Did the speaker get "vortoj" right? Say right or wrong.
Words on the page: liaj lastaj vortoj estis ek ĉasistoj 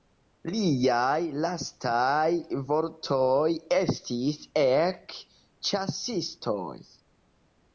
right